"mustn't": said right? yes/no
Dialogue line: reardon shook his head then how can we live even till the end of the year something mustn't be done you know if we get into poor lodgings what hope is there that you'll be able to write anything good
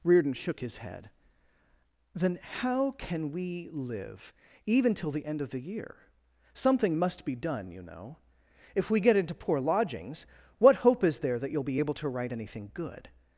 no